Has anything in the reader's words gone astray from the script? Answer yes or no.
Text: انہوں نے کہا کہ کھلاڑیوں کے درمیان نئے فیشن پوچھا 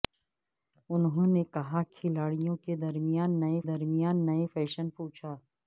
yes